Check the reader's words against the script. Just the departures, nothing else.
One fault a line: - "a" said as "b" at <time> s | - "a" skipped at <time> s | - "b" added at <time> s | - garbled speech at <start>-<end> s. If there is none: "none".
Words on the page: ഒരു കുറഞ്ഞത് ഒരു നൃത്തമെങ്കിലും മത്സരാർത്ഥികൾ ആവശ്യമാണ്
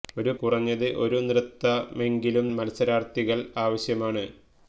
none